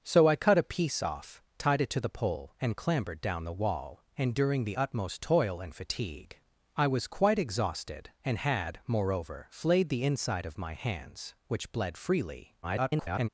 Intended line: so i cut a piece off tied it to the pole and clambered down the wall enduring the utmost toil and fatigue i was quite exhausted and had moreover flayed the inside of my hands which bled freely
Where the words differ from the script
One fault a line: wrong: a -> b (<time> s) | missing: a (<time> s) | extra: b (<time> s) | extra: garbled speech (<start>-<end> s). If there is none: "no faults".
extra: garbled speech (12.6-13.3 s)